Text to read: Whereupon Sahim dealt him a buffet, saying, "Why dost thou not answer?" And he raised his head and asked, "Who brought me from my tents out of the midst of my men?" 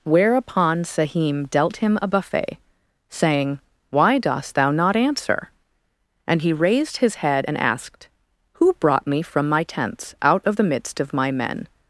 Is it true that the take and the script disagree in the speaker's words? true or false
false